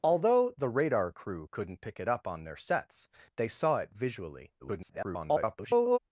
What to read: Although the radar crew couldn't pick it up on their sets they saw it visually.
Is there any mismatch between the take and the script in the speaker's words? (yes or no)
yes